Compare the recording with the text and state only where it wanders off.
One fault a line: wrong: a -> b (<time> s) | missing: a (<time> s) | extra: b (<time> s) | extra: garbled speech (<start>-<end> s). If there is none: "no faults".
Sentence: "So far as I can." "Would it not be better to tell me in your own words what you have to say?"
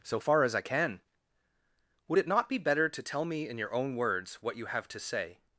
no faults